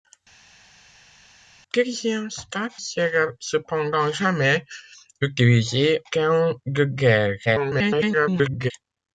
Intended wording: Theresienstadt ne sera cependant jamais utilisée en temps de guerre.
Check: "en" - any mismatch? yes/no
yes